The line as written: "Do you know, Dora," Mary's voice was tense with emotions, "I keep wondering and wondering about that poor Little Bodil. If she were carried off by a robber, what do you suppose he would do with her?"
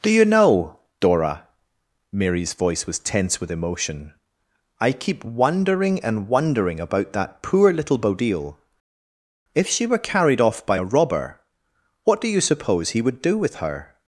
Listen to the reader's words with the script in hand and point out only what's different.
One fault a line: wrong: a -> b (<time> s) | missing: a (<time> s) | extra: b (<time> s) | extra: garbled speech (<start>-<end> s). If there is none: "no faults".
wrong: emotions -> emotion (3.5 s)